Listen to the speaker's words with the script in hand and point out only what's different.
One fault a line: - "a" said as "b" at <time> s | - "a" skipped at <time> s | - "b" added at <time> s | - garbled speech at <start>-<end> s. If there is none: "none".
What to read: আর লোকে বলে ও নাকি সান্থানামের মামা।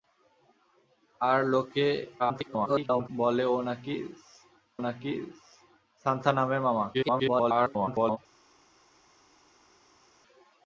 - garbled speech at 2.2-3.1 s
- "নাকি" added at 4.8 s
- garbled speech at 6.9-8.2 s